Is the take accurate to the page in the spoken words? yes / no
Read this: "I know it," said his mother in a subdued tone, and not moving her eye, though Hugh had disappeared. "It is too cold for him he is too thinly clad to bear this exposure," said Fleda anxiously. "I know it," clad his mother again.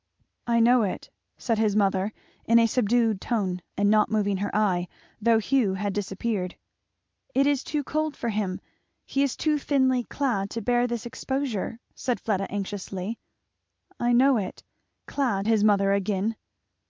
yes